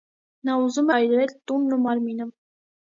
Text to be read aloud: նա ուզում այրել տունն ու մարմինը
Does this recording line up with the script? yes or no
yes